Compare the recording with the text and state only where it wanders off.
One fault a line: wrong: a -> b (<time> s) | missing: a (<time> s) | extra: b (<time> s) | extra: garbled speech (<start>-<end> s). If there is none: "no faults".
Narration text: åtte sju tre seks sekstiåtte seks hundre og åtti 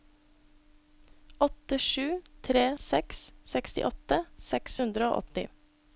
no faults